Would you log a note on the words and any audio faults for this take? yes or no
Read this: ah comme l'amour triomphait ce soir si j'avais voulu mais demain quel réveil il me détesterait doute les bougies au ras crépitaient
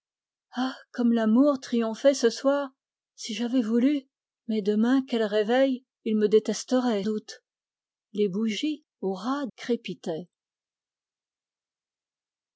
no